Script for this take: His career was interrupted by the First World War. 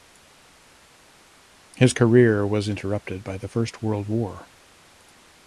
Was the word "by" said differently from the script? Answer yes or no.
no